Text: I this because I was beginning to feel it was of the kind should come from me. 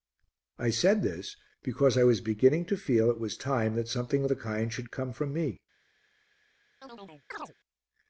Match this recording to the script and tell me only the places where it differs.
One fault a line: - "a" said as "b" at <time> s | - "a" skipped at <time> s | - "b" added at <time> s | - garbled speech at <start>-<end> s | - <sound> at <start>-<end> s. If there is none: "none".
- "said" added at 0.7 s
- "time that something" added at 3.4 s
- chirp at 6.8-7.5 s